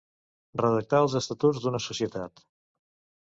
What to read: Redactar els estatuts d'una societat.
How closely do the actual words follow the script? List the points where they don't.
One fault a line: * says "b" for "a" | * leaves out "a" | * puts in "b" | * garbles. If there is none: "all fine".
all fine